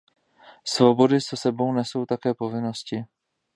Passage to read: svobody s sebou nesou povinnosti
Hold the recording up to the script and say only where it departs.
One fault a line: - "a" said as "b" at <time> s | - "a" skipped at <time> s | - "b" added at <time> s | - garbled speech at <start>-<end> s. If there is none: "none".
- "také" added at 2.1 s